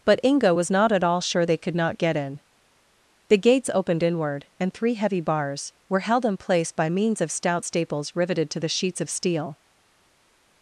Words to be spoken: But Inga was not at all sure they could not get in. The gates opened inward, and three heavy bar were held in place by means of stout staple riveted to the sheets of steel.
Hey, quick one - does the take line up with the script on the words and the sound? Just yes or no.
no